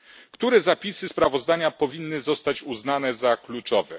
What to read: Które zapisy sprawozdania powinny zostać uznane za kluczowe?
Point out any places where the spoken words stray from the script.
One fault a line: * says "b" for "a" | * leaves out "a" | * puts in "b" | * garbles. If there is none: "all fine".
all fine